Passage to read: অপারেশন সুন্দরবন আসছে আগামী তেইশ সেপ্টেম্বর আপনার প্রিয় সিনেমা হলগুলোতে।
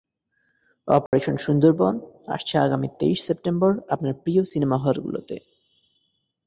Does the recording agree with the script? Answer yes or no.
yes